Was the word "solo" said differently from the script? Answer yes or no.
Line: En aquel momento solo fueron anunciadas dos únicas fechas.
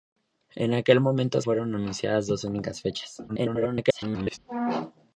yes